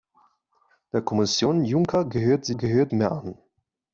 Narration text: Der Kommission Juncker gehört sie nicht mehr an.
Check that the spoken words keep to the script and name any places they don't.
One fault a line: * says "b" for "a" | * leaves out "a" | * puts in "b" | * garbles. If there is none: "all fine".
* says "gehört" for "nicht"